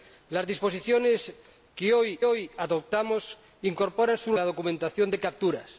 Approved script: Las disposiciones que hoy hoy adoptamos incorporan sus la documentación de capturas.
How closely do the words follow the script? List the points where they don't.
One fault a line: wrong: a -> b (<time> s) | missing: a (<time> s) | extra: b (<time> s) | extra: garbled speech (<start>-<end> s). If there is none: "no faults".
no faults